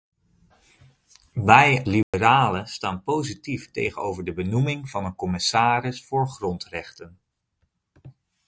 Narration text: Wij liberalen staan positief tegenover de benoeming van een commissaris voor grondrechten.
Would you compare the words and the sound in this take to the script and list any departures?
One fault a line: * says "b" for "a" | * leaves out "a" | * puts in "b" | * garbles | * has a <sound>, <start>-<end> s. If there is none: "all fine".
* has a dropout, 2.0-2.1 s